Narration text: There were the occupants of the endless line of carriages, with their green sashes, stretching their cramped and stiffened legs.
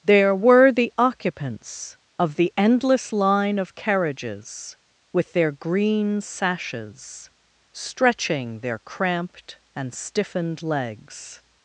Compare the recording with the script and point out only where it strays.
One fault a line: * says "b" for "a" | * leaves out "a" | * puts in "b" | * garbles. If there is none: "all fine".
all fine